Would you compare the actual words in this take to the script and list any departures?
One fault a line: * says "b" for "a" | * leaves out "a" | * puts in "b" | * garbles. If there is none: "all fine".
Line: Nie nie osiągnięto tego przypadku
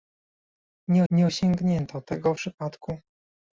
all fine